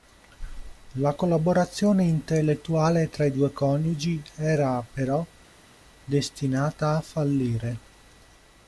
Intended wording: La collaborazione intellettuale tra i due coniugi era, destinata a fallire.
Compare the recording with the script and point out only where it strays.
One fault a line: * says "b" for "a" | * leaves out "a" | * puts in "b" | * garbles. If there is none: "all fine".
* puts in "però"